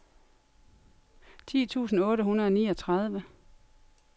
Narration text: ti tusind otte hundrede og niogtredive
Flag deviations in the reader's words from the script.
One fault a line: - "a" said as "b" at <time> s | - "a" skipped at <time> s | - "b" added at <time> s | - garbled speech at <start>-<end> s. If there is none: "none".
none